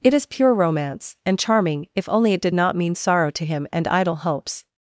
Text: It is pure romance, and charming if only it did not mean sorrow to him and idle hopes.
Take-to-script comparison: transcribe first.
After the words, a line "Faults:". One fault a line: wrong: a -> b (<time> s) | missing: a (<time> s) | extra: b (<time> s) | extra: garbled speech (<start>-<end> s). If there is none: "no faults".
It is pure romance, and charming if only it did not mean sorrow to him and idle hopes.
Faults:
no faults